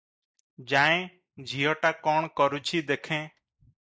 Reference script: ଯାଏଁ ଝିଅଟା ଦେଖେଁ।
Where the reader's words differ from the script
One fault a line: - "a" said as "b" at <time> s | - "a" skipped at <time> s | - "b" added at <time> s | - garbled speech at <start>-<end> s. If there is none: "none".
- "କ'ଣ କରୁଛି" added at 2.1 s